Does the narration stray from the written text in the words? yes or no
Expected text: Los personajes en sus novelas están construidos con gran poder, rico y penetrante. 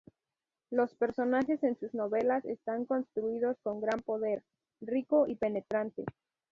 no